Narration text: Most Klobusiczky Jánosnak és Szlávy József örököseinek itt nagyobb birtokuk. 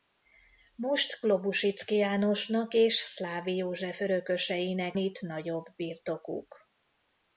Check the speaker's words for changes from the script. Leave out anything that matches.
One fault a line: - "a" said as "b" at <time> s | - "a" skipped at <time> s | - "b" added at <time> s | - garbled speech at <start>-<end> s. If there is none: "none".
none